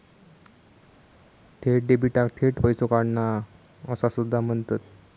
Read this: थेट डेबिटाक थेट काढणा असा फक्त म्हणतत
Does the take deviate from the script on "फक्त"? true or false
true